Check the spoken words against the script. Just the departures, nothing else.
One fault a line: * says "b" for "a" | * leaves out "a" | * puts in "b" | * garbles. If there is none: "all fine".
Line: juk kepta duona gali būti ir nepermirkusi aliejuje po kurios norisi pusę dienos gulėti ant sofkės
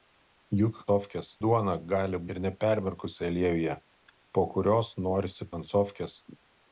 * says "sofkės" for "kepta"
* leaves out "būti"
* leaves out "pusę dienos gulėti"